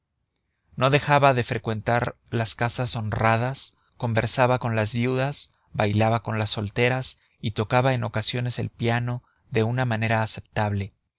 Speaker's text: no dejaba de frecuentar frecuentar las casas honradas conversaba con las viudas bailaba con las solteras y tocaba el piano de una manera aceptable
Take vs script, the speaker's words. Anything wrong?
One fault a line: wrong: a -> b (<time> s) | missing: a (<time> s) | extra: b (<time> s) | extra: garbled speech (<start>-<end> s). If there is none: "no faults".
missing: frecuentar (2.1 s)
extra: en ocasiones (7.9 s)